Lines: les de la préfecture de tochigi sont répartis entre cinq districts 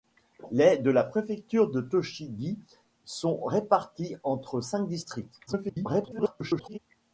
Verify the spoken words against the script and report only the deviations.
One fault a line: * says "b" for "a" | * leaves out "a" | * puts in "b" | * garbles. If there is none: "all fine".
* garbles